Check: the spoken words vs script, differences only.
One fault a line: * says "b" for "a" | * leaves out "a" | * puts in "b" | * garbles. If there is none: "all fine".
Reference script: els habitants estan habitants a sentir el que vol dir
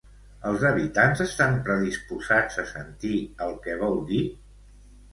* says "predisposats" for "habitants"